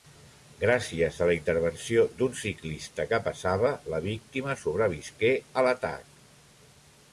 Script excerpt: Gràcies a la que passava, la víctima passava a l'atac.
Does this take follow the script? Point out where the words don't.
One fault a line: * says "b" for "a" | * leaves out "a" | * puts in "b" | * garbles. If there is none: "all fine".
* puts in "intervenció d'un ciclista"
* says "sobrevisqué" for "passava"